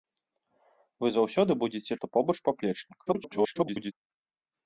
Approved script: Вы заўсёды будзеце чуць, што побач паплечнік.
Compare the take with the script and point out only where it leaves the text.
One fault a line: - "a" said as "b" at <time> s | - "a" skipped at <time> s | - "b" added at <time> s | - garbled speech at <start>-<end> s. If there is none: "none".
- "чуць" skipped at 1.9 s
- garbled speech at 3.1-3.9 s